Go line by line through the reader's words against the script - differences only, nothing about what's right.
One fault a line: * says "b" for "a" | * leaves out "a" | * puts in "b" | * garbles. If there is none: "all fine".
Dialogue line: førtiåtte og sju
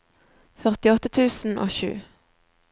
* puts in "tusen"